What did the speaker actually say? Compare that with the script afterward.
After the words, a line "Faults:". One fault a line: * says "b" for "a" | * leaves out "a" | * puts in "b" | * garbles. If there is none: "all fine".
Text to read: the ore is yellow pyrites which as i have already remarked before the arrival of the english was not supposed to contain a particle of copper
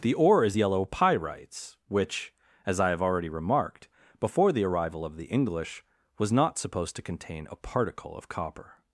the ore is yellow pyrites which as i have already remarked before the arrival of the english was not supposed to contain a particle of copper
Faults:
all fine